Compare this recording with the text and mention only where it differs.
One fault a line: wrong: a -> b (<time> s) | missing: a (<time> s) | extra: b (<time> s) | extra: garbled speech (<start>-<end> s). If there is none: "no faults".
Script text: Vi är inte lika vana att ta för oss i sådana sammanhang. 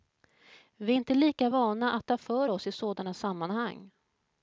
no faults